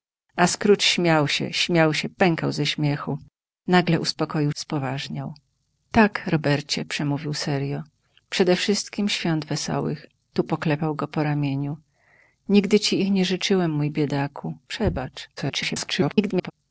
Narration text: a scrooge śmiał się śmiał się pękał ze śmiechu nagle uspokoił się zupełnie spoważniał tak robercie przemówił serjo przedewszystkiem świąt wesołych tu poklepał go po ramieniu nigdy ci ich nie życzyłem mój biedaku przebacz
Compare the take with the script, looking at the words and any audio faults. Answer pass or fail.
fail